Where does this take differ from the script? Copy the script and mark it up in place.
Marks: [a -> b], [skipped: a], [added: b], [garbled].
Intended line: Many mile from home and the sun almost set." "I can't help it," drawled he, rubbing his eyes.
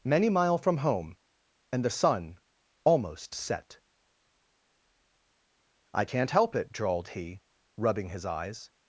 Many mile from home and the sun almost set." "I can't help it," drawled he, rubbing his eyes.